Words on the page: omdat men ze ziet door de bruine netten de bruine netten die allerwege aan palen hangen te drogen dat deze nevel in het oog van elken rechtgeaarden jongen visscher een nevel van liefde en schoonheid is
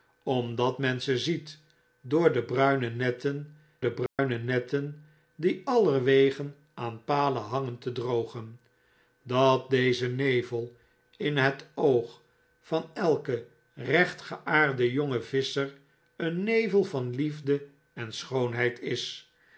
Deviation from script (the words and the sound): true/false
true